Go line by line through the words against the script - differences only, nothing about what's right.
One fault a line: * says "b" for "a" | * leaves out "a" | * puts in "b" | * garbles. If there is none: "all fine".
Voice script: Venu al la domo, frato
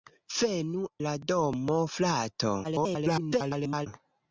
* leaves out "al"
* garbles